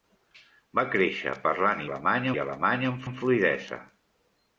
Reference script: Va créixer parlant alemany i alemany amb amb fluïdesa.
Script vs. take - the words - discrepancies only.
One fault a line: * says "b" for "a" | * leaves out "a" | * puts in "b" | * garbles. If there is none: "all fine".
all fine